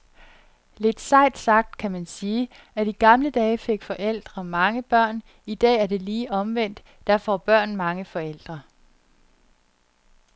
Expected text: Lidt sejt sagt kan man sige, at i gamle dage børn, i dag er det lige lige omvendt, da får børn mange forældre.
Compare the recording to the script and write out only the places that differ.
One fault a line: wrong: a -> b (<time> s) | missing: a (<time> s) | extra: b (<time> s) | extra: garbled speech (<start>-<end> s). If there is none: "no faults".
extra: fik forældre mange (3.6 s)
missing: lige (6.3 s)